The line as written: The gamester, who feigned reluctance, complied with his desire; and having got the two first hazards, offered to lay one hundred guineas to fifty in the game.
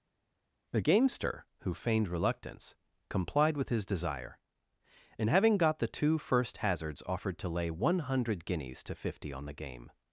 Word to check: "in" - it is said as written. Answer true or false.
false